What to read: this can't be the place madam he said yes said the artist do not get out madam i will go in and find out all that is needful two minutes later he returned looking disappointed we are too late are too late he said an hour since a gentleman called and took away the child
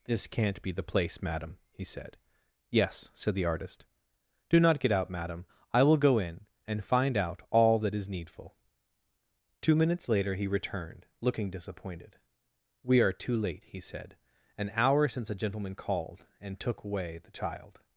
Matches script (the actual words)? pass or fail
fail